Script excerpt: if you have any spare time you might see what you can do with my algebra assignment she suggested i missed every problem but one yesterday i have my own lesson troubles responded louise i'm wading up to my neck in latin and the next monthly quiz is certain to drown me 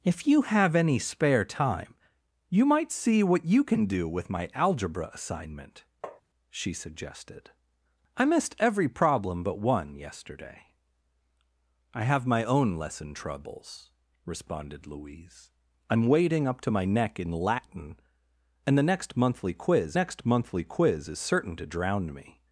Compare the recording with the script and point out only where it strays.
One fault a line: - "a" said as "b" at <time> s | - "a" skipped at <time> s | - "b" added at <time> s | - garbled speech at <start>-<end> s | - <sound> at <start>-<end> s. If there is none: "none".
- tap at 6.0-6.2 s
- "next monthly quiz" added at 20.0 s